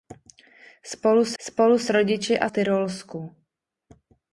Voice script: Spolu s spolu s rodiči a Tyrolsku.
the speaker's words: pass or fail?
pass